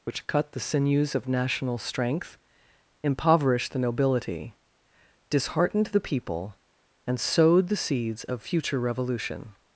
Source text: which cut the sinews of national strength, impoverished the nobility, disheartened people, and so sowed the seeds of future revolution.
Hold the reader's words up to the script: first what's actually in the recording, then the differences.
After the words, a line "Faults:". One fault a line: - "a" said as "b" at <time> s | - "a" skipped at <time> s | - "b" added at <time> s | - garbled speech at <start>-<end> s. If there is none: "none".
which cut the sinews of national strength, impoverished the nobility, disheartened the people, and sowed the seeds of future revolution.
Faults:
- "the" added at 5.9 s
- "so" skipped at 7.2 s